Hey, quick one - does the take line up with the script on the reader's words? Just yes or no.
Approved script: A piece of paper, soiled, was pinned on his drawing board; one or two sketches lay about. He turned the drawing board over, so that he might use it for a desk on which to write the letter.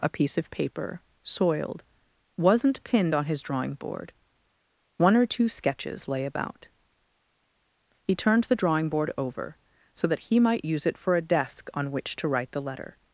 no